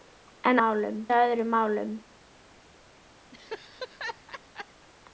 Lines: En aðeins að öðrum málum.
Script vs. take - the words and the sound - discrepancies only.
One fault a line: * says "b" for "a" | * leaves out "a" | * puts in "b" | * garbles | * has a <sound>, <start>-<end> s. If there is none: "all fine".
* says "málum" for "aðeins"
* has a laugh, 3.3-4.9 s